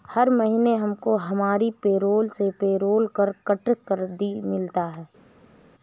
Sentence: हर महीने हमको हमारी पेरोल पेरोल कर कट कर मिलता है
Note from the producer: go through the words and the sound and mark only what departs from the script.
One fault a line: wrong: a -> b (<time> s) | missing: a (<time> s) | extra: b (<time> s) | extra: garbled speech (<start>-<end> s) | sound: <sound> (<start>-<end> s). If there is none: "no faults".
extra: से (2.3 s)